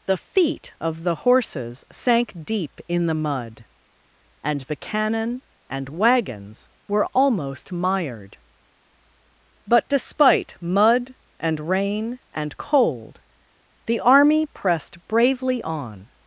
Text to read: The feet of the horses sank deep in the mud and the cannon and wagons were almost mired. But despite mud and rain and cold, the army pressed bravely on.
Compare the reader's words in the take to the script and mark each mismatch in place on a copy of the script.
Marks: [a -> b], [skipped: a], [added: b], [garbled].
The feet of the horses sank deep in the mud and the cannon and wagons were almost mired. But despite mud and rain and cold, the army pressed bravely on.